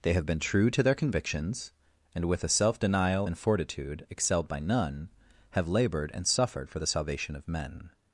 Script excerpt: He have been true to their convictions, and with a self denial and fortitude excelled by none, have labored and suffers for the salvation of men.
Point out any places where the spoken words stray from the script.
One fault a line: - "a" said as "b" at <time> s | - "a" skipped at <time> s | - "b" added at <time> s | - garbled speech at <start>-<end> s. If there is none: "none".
- "He" said as "They" at 0.0 s
- "suffers" said as "suffered" at 6.3 s